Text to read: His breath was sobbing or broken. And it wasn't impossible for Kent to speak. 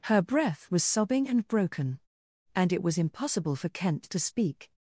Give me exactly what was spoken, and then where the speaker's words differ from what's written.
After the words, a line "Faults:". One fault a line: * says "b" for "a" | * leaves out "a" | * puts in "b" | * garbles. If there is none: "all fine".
Her breath was sobbing and broken. And it was impossible for Kent to speak.
Faults:
* says "Her" for "His"
* says "and" for "or"
* says "was" for "wasn't"